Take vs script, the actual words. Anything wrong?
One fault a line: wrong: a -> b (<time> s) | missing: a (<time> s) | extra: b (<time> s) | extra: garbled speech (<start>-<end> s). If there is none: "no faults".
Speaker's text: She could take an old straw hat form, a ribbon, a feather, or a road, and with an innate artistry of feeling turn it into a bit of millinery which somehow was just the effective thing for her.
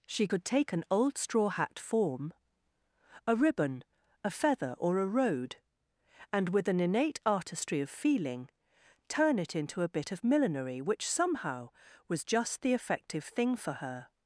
no faults